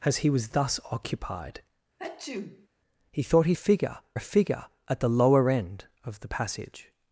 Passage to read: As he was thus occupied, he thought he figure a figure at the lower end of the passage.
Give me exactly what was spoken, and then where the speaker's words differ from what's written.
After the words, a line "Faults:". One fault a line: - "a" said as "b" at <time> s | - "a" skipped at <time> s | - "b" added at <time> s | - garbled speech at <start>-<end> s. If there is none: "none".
As he was thus occupied, he thought he figure a figure at the lower end of the passage.
Faults:
none